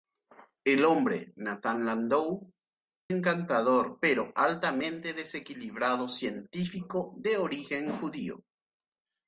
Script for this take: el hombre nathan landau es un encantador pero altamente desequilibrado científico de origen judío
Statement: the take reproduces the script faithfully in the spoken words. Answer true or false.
false